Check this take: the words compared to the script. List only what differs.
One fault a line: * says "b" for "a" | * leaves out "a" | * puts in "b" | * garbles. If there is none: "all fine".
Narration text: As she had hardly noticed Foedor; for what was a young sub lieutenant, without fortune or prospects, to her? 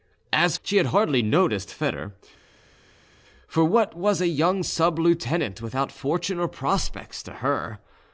all fine